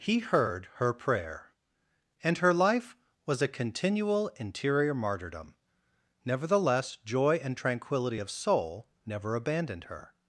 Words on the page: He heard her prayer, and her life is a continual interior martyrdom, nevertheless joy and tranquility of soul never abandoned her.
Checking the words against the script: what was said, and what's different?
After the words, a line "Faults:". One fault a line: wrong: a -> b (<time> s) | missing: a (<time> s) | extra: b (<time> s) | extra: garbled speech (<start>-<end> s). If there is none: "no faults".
He heard her prayer, and her life was a continual interior martyrdom, nevertheless joy and tranquility of soul never abandoned her.
Faults:
wrong: is -> was (3.3 s)